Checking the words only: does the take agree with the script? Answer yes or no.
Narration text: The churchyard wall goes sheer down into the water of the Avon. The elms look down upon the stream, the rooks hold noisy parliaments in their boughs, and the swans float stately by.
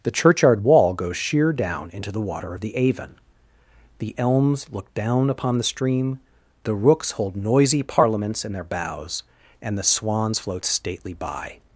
yes